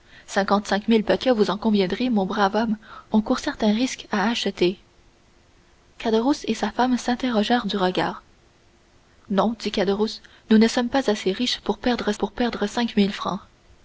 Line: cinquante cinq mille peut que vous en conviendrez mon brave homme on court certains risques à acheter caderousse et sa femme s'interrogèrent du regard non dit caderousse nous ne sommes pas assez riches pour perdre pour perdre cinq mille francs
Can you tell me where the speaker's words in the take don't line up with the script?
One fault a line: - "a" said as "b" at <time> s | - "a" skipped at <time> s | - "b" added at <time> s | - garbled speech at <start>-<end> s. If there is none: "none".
none